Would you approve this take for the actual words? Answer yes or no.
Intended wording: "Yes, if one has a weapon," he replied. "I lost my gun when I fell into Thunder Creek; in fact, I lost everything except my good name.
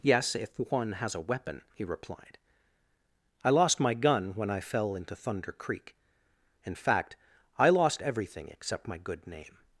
yes